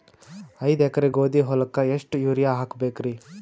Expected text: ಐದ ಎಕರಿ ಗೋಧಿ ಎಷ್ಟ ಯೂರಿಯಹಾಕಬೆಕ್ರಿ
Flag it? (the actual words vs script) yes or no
yes